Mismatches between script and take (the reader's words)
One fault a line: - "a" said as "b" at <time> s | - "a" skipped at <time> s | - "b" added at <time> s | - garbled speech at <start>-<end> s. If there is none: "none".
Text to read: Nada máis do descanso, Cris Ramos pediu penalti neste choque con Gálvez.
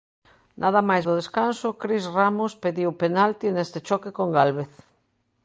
none